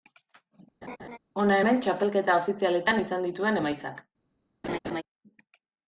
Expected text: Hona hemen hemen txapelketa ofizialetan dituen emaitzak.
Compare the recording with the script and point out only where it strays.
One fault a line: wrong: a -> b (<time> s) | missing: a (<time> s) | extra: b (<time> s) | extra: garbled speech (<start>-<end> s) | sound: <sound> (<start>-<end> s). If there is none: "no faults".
sound: laugh (0.8-1.2 s)
missing: hemen (1.8 s)
extra: izan (3.0 s)
sound: laugh (4.6-5.0 s)